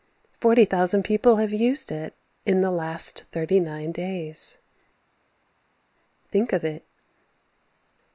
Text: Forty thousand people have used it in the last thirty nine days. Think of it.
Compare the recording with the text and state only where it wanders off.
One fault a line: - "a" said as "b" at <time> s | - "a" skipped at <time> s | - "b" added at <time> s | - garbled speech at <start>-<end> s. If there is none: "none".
none